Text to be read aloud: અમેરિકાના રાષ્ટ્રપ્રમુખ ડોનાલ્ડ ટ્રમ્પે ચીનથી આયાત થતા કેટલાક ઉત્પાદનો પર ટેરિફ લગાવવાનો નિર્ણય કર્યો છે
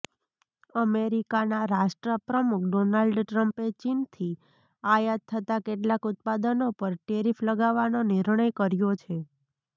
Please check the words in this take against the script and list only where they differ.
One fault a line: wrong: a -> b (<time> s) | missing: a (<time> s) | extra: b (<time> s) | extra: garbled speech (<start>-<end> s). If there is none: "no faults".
no faults